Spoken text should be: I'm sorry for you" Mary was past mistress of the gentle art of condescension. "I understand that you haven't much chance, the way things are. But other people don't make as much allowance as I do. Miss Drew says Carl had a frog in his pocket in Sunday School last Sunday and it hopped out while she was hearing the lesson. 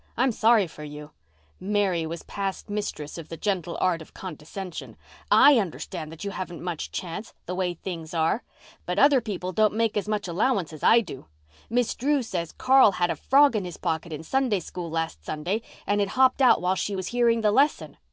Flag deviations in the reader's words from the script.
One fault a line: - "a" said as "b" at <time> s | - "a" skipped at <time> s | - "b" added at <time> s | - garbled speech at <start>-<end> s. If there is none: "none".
none